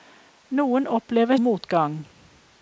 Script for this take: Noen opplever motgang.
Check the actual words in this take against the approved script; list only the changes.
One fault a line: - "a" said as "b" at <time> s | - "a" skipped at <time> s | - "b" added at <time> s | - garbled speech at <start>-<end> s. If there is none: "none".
none